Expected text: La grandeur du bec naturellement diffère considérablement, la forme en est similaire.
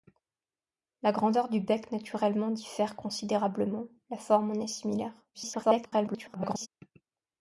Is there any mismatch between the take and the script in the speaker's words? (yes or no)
yes